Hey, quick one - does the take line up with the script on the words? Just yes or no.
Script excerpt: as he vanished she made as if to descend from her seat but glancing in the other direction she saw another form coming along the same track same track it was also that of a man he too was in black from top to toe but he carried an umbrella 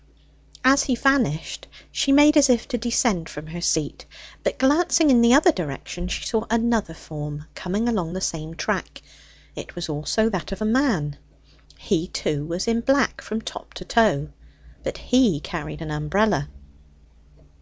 no